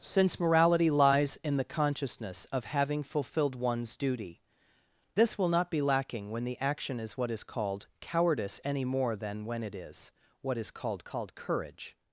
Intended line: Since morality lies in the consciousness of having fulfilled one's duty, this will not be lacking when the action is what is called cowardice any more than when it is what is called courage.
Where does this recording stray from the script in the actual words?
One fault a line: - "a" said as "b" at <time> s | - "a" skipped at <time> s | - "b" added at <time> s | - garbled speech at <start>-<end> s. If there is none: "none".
- "called" added at 11.0 s